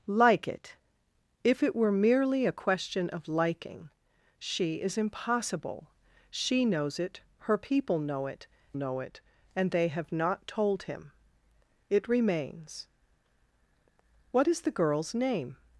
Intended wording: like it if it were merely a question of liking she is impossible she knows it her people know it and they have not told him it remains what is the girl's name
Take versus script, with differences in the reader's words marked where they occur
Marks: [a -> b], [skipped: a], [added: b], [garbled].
like it if it were merely a question of liking she is impossible she knows it her people know it [added: know it] and they have not told him it remains what is the girl's name